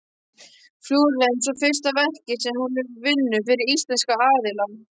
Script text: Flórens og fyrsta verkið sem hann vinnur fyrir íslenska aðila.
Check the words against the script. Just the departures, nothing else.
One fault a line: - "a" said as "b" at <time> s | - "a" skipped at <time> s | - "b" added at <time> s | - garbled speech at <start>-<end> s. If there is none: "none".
- "hann" said as "hún" at 2.6 s